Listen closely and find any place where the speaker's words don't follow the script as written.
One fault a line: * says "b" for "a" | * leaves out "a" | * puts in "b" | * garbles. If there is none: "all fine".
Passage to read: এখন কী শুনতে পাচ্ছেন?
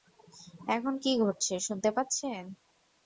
* puts in "ঘটছে"